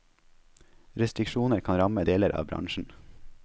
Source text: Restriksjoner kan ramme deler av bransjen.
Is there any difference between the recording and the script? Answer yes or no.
no